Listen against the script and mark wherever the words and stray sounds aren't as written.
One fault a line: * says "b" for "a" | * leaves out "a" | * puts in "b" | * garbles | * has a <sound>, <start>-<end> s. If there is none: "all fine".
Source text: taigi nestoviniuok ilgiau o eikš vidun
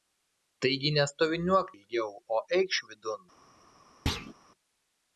* has a thud, 4.1-4.3 s